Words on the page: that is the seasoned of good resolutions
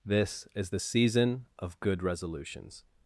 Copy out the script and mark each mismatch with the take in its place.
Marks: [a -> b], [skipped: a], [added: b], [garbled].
[that -> this] is the [seasoned -> season] of good resolutions